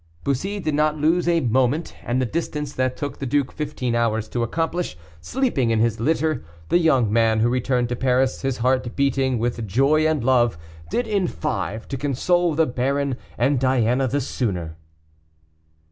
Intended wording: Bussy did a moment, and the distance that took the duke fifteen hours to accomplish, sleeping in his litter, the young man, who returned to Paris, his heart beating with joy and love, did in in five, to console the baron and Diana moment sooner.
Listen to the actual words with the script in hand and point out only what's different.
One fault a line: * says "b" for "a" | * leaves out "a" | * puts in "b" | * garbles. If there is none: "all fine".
* puts in "not lose"
* leaves out "in"
* says "the" for "moment"